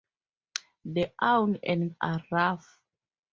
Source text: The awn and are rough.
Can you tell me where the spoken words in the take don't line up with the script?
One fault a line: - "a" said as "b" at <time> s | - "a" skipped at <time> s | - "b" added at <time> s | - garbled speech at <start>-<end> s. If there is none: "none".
none